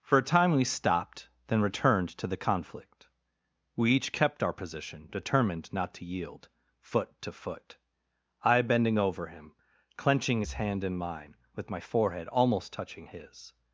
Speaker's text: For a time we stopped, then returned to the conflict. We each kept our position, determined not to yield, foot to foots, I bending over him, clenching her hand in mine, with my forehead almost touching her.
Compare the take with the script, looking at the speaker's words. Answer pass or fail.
fail